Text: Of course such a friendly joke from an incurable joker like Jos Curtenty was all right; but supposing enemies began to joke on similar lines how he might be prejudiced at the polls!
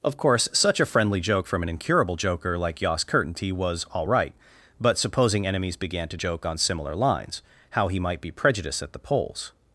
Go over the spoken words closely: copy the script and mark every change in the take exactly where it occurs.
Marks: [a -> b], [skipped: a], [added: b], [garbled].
Of course such a friendly joke from an incurable joker like Jos Curtenty was all right; but supposing enemies began to joke on similar lines how he might be prejudiced at the polls!